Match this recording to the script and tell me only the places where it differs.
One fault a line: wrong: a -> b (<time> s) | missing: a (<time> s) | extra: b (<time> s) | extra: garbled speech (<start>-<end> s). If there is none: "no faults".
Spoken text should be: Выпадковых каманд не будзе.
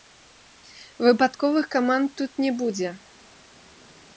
extra: тут (2.2 s)